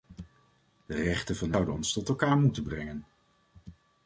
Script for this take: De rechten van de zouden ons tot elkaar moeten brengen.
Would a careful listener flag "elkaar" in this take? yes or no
no